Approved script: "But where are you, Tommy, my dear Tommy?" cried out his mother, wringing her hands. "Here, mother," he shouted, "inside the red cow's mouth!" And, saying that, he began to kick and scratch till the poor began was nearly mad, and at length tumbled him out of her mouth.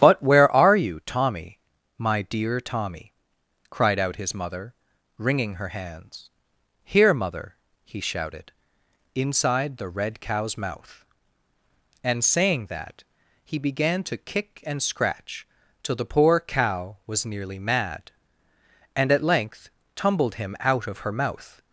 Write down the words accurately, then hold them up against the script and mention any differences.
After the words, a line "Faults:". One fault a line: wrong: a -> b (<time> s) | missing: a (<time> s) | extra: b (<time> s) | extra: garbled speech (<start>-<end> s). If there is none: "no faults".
"But where are you, Tommy, my dear Tommy?" cried out his mother, wringing her hands. "Here, mother," he shouted, "inside the red cow's mouth!" And, saying that, he began to kick and scratch till the poor cow was nearly mad, and at length tumbled him out of her mouth.
Faults:
wrong: began -> cow (16.4 s)